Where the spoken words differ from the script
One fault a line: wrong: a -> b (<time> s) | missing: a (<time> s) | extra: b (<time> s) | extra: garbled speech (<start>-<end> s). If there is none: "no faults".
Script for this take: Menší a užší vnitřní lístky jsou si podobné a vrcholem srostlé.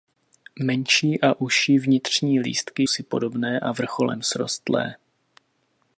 missing: jsou (2.8 s)